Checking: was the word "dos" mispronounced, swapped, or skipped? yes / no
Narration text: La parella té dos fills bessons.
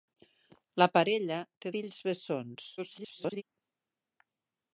yes